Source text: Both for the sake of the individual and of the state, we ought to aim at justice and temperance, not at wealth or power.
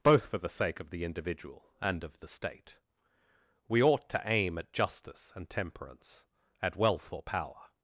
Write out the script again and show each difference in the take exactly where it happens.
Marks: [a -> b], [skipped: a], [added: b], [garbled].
Both for the sake of the individual and of the state, we ought to aim at justice and temperance, [skipped: not] at wealth or power.